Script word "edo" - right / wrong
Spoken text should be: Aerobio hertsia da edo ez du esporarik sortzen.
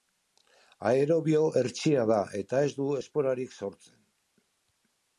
wrong